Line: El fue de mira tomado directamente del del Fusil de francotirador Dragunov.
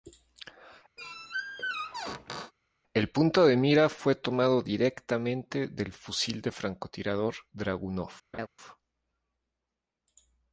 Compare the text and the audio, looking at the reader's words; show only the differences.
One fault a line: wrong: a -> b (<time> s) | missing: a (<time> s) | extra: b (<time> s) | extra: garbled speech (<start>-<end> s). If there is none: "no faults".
wrong: fue -> punto (3.1 s)
extra: fue (3.9 s)
missing: del (5.9 s)